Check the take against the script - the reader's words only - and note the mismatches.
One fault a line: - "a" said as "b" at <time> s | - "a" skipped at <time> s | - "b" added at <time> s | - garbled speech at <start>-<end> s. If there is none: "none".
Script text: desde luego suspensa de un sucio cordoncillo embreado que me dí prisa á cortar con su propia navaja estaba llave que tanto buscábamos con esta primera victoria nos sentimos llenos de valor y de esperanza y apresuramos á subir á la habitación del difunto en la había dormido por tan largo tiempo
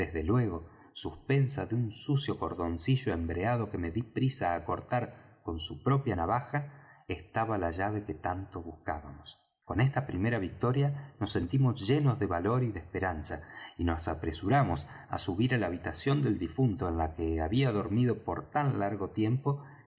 - "la" added at 7.6 s
- "nos" added at 13.8 s
- "que" added at 17.1 s